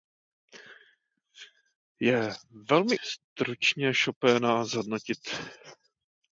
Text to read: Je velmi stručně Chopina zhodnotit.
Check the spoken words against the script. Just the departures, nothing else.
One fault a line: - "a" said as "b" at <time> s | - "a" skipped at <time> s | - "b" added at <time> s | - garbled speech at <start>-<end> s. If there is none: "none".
none